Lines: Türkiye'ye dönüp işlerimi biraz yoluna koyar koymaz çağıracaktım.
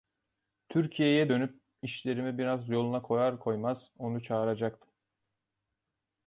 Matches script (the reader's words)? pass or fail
fail